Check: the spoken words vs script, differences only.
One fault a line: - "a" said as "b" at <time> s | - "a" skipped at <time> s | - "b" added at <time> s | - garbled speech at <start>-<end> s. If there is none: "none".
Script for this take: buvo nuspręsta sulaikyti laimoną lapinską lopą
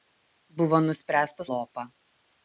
- "sulaikyti laimoną lapinską" skipped at 1.4 s